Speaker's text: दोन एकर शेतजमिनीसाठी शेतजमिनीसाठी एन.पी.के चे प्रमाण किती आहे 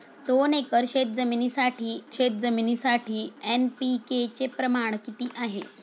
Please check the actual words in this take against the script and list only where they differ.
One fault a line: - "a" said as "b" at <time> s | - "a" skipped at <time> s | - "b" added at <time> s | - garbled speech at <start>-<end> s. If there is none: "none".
none